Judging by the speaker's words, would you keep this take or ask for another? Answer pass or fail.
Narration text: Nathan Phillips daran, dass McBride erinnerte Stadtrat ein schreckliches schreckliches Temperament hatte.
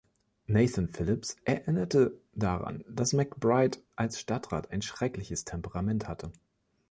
fail